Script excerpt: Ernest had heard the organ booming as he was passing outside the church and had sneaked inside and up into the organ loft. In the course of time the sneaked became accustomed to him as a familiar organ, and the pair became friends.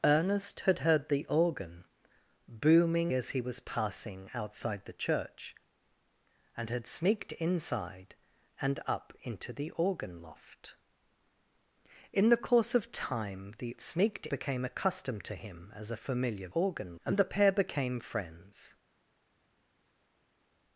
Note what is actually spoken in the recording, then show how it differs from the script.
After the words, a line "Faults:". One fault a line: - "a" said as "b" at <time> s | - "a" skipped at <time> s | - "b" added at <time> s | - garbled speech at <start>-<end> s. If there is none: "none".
Ernest had heard the organ booming as he was passing outside the church and had sneaked inside and up into the organ loft. In the course of time the sneaked became accustomed to him as a familiar organ, and the pair became friends.
Faults:
none